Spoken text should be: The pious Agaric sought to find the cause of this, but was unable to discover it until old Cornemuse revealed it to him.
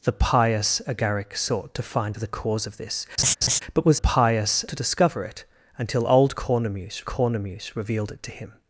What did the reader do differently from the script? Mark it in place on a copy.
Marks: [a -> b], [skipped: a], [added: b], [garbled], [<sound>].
The pious Agaric sought to find the cause of this, [laugh] but was [unable -> pious] to discover it until old Cornemuse [added: Cornemuse] revealed it to him.